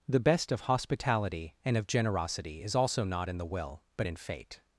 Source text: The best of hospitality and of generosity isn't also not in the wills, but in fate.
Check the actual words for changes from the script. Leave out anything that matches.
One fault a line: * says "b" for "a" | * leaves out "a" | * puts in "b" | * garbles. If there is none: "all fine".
* says "is" for "isn't"
* says "will" for "wills"